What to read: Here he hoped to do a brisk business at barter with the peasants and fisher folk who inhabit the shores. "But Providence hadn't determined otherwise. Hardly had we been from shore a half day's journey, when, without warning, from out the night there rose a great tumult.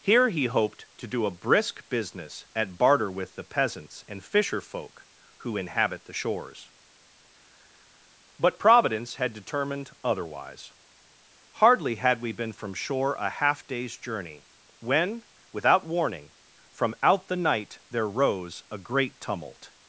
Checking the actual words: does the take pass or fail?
fail